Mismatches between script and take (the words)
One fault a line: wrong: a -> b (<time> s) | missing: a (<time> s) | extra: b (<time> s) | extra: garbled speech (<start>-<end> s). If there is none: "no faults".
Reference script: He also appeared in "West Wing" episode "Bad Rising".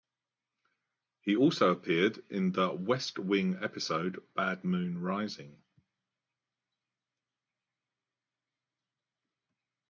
extra: The (2.5 s)
extra: Moon (4.6 s)